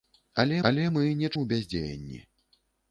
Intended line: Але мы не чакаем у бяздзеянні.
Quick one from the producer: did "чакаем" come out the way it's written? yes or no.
no